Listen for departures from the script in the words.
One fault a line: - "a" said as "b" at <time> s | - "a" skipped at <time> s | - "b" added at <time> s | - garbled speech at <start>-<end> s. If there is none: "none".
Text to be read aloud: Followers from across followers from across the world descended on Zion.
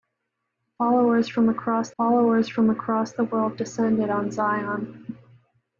none